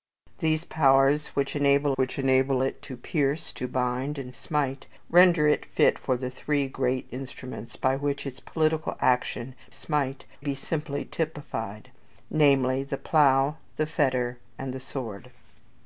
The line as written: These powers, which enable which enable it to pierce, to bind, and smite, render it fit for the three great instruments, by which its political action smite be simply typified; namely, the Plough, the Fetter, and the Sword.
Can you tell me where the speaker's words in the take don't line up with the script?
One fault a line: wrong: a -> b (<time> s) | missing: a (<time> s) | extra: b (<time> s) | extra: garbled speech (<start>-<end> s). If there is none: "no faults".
no faults